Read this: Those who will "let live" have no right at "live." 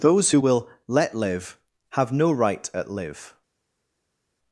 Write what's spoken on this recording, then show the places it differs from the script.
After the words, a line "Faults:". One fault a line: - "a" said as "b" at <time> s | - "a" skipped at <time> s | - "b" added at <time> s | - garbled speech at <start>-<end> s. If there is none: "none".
Those who will "let live" have no right at "live."
Faults:
none